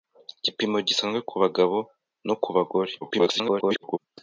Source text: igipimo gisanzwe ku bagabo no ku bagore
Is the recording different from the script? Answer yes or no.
yes